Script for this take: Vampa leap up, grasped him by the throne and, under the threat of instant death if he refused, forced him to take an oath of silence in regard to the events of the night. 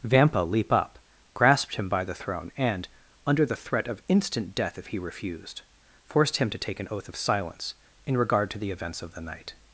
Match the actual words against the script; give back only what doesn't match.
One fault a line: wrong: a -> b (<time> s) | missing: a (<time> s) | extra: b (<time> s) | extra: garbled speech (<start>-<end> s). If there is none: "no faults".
no faults